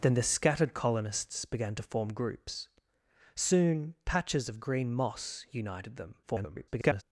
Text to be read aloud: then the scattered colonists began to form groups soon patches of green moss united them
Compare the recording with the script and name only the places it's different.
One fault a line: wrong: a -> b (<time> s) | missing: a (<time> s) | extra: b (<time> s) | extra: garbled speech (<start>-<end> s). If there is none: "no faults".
extra: garbled speech (6.2-7.0 s)